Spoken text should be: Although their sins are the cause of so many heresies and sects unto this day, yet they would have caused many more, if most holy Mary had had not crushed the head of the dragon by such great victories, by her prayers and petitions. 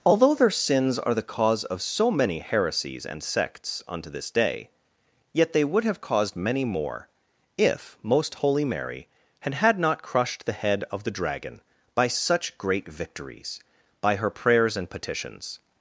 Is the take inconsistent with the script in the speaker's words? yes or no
no